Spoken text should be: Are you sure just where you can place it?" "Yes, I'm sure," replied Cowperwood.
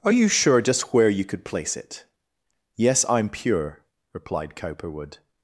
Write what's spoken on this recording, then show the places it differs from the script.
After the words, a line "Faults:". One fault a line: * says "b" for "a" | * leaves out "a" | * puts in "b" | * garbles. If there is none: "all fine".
Are you sure just where you could place it?" "Yes, I'm pure," replied Cowperwood.
Faults:
* says "could" for "can"
* says "pure" for "sure"